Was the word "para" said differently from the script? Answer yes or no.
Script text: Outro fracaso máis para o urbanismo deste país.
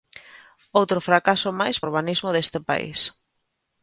yes